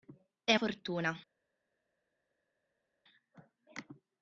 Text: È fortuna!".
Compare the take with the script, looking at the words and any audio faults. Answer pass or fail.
pass